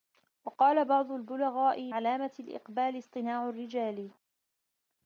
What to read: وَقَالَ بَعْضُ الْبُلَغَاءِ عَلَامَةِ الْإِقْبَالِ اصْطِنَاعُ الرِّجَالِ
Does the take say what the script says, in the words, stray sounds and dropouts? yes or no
yes